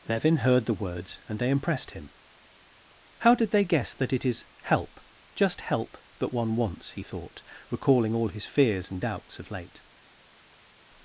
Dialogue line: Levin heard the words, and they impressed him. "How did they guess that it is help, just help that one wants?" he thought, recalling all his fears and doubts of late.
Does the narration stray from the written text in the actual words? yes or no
no